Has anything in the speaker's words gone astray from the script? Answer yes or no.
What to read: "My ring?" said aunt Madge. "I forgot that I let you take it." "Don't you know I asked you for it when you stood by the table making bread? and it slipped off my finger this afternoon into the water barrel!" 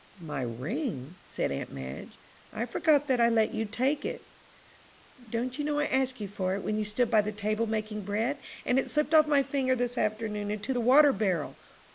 no